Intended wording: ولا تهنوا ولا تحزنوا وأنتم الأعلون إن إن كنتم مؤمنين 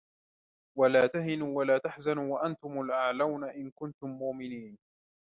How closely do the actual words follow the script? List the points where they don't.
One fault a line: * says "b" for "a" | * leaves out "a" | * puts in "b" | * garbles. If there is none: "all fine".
* leaves out "إن"